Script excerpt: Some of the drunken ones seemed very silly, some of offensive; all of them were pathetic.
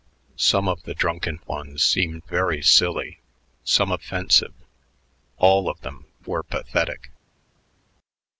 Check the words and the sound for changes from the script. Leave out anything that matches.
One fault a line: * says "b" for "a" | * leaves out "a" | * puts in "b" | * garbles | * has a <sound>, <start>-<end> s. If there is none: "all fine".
all fine